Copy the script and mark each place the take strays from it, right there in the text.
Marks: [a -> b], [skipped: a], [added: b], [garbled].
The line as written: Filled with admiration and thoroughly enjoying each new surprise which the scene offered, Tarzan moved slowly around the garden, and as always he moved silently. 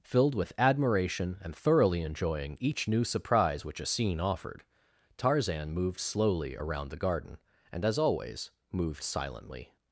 Filled with admiration and thoroughly enjoying each new surprise which [the -> a] scene offered, Tarzan moved slowly around the garden, and as always [skipped: he] moved silently.